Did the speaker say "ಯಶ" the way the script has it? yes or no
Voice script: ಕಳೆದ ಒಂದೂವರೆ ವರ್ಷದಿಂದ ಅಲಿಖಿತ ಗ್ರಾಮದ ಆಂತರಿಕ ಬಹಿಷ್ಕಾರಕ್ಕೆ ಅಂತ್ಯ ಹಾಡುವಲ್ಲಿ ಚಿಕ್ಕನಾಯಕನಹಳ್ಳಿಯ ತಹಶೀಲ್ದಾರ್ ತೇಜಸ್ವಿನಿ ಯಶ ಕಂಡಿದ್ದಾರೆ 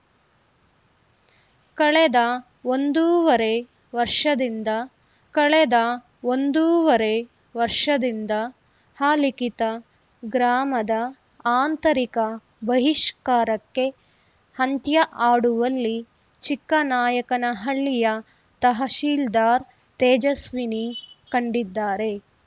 no